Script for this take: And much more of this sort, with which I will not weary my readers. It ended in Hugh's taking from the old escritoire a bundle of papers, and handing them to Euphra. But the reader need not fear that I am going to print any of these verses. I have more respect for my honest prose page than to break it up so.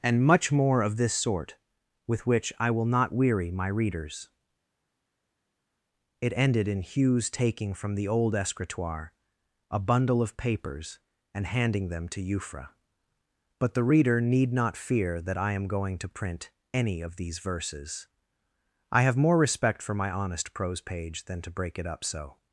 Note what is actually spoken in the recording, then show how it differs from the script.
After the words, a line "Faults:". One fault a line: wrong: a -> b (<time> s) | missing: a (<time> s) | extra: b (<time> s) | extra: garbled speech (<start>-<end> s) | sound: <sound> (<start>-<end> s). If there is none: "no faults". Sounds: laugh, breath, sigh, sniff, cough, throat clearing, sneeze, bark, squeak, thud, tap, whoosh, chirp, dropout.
And much more of this sort, with which I will not weary my readers. It ended in Hugh's taking from the old escritoire a bundle of papers, and handing them to Euphra. But the reader need not fear that I am going to print any of these verses. I have more respect for my honest prose page than to break it up so.
Faults:
no faults